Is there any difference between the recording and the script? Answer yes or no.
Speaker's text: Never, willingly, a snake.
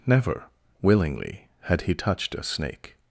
yes